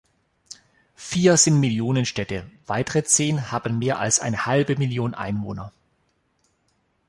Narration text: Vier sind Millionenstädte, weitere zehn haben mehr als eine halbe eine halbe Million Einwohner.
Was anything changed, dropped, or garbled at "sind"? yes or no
no